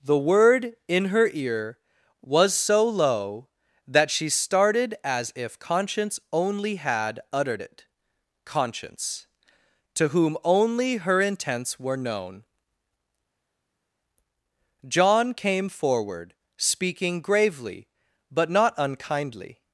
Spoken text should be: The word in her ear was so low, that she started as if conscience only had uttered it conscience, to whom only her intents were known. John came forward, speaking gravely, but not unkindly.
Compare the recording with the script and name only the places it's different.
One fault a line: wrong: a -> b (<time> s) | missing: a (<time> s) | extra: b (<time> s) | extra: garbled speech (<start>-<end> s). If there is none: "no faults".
no faults